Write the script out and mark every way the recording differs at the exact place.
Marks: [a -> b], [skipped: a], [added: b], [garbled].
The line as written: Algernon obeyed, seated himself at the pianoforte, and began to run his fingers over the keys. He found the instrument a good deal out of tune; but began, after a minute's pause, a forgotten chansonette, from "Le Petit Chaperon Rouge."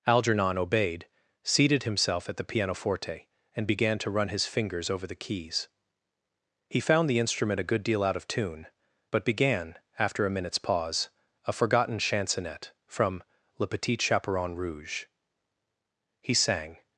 Algernon obeyed, seated himself at the pianoforte, and began to run his fingers over the keys. He found the instrument a good deal out of tune; but began, after a minute's pause, a forgotten chansonette, from "Le Petit Chaperon Rouge." [added: He sang]